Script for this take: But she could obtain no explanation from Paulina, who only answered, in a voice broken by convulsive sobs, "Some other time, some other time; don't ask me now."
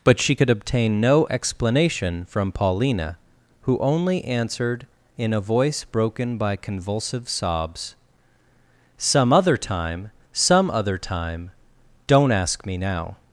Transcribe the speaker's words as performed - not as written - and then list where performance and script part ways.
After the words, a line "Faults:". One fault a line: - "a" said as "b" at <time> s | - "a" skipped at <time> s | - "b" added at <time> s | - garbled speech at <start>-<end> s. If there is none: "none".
But she could obtain no explanation from Paulina, who only answered, in a voice broken by convulsive sobs, "Some other time, some other time; don't ask me now."
Faults:
none